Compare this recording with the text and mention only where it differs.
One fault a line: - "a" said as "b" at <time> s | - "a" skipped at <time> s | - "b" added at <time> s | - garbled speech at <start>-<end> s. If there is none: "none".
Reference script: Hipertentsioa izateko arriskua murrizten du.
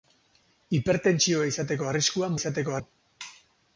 - "murrizten" said as "izateko" at 2.4 s